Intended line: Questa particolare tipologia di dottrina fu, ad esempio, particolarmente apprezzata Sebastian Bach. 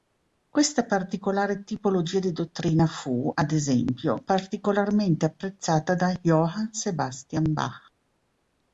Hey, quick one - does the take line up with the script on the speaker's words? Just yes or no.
no